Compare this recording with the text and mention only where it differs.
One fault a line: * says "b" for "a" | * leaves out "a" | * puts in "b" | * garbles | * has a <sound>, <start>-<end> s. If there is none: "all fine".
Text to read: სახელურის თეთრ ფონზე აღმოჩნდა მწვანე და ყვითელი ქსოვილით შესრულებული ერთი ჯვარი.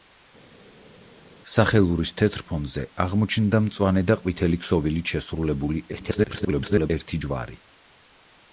* garbles